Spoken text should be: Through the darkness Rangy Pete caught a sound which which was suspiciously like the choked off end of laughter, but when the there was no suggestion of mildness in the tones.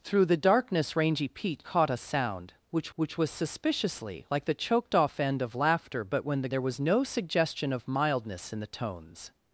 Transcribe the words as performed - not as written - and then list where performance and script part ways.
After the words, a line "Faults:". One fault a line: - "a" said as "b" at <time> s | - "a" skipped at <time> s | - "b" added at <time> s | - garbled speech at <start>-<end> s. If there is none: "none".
Through the darkness Rangy Pete caught a sound which which was suspiciously like the choked off end of laughter, but when the there was no suggestion of mildness in the tones.
Faults:
none